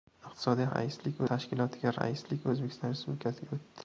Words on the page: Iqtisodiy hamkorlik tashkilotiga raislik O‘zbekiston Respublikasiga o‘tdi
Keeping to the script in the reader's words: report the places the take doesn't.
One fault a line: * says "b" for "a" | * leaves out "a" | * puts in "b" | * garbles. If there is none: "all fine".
* says "raislik" for "hamkorlik"